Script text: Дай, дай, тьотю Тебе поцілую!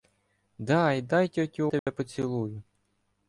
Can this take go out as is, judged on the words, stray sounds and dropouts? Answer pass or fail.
fail